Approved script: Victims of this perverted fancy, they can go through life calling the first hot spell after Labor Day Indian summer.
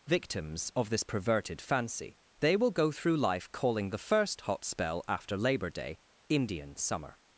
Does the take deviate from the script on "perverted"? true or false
false